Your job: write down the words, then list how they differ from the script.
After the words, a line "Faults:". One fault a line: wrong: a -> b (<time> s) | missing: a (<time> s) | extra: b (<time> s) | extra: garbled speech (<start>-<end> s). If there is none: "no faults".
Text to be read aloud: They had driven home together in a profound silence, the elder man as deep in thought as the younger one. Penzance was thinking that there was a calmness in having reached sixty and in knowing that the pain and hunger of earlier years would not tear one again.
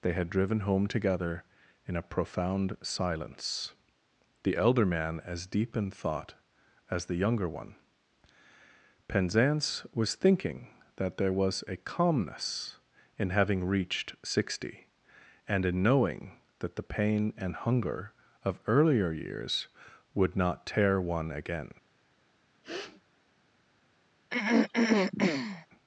They had driven home together in a profound silence, the elder man as deep in thought as the younger one. Penzance was thinking that there was a calmness in having reached sixty and in knowing that the pain and hunger of earlier years would not tear one again.
Faults:
no faults